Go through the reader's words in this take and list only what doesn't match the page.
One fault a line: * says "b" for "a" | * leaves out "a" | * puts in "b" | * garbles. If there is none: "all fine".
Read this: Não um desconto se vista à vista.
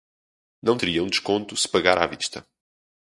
* puts in "teria"
* says "pagar" for "vista"